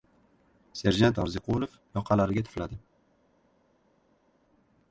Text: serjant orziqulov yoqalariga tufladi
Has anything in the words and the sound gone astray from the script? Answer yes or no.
no